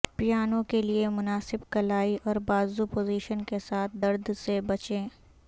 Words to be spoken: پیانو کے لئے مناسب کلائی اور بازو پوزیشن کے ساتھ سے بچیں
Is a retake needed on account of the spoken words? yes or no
yes